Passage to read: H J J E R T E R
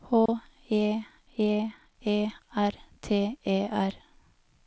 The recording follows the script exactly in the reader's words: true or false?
true